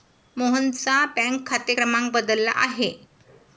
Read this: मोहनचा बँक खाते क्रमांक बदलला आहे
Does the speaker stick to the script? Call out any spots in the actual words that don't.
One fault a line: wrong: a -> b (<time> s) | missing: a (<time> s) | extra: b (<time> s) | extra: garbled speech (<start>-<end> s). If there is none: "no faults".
no faults